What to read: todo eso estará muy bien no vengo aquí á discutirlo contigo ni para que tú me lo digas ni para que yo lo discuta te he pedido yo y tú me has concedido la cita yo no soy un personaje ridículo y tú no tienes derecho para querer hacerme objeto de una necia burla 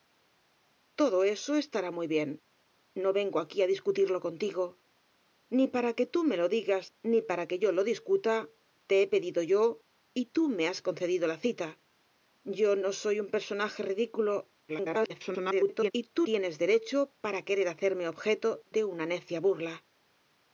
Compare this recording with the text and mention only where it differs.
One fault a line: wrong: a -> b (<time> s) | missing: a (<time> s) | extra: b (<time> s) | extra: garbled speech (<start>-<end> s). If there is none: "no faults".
extra: garbled speech (14.7-15.9 s)
missing: no (16.2 s)